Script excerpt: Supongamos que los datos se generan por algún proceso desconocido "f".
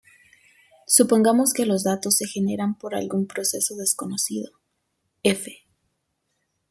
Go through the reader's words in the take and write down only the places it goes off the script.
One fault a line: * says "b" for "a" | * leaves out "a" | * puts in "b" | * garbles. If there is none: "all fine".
all fine